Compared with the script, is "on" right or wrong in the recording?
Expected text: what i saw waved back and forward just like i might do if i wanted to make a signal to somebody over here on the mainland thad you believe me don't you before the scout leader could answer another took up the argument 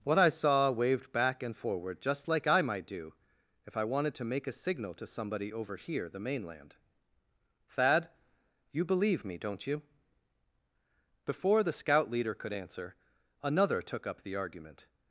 wrong